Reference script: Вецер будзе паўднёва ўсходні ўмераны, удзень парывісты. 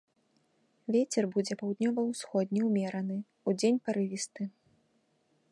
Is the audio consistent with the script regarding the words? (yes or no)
yes